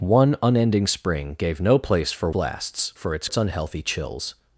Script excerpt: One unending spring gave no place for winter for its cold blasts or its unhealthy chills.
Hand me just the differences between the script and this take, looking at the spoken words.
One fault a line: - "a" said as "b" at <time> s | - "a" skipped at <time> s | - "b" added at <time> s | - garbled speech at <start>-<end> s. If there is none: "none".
- "winter" said as "blasts" at 2.3 s
- "cold blasts or" skipped at 3.3 s